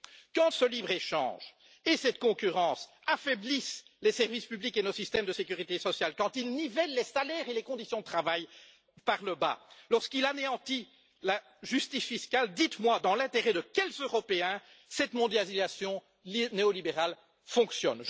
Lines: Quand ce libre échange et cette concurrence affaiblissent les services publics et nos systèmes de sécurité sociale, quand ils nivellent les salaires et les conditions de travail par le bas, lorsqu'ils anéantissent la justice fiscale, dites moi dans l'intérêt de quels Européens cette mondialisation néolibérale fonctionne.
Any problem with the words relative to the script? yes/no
no